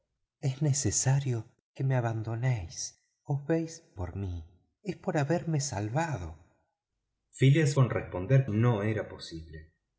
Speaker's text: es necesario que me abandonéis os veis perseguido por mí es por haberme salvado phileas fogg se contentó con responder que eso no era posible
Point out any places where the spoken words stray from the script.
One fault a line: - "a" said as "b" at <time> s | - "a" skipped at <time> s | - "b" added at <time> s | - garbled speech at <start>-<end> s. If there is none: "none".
- "perseguido" skipped at 3.7 s
- "fogg se contentó" skipped at 7.7 s
- "que eso" skipped at 8.5 s